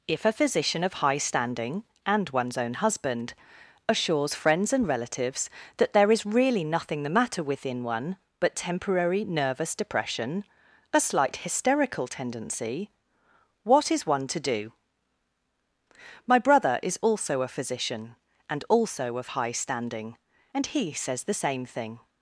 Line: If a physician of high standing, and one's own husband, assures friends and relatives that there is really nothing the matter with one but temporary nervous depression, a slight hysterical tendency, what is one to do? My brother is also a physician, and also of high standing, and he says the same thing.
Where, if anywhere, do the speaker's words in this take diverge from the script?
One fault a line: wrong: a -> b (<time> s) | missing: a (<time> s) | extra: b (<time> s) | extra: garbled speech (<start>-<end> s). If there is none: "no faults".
wrong: with -> within (7.4 s)